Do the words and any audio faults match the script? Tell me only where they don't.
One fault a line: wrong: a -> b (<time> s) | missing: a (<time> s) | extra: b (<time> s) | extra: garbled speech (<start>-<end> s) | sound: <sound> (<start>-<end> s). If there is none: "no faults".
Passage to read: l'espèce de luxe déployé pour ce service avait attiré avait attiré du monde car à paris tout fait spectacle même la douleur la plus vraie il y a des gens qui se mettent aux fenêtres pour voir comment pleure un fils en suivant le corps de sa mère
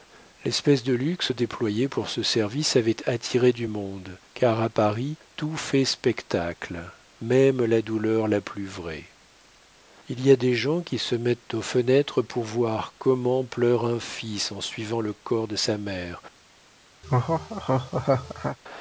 missing: avait attiré (3.5 s)
sound: laugh (17.0-18.6 s)